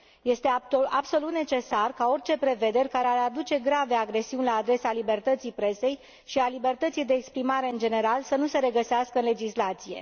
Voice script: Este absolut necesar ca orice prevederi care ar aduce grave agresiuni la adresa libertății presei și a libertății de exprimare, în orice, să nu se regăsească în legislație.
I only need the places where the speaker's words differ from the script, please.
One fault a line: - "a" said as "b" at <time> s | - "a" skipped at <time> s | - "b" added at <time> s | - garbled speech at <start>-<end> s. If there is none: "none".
- "orice" said as "general" at 7.8 s